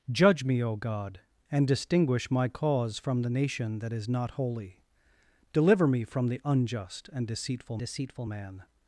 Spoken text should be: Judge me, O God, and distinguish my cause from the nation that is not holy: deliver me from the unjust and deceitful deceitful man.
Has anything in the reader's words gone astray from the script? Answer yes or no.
no